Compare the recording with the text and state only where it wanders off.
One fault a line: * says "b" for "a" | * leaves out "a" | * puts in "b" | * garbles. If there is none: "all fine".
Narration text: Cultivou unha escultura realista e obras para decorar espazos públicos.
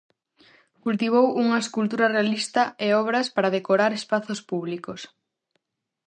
all fine